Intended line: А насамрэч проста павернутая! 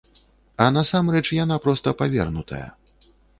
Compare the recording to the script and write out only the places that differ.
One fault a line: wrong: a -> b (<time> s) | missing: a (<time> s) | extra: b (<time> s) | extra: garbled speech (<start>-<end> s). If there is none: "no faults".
extra: яна (1.4 s)